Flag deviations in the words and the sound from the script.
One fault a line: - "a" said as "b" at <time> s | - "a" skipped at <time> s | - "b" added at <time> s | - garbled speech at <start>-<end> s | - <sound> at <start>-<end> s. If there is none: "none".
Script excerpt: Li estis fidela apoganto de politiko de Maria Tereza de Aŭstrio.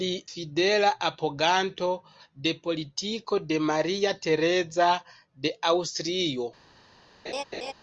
- "estis" skipped at 0.1 s
- laugh at 7.2-7.7 s